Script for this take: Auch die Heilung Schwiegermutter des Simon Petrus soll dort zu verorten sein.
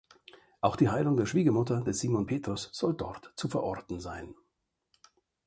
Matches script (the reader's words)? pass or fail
fail